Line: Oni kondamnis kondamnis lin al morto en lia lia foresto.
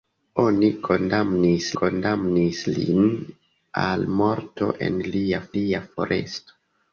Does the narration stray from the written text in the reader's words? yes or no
no